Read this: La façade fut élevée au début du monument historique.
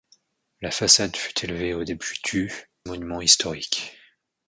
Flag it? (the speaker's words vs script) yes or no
no